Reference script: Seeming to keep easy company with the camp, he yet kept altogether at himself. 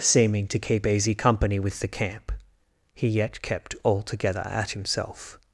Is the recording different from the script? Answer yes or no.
no